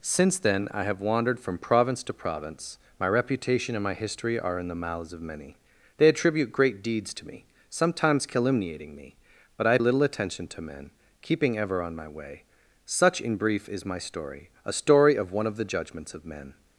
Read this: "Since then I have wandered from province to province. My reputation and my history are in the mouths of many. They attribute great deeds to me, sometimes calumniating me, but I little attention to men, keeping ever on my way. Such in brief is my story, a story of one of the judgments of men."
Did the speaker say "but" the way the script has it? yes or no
yes